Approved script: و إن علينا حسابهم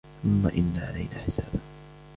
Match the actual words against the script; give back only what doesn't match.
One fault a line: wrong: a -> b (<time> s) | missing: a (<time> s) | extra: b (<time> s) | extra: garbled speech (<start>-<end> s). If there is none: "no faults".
wrong: و -> ثم (0.2 s)